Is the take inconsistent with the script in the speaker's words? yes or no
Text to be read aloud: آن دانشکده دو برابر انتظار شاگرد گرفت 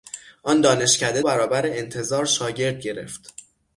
yes